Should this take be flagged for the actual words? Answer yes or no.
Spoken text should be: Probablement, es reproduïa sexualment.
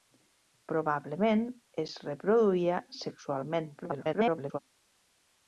yes